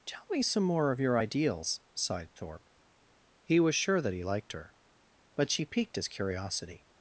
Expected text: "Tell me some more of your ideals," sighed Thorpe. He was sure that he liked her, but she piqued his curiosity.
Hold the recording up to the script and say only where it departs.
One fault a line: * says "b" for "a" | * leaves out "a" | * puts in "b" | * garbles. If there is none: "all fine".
all fine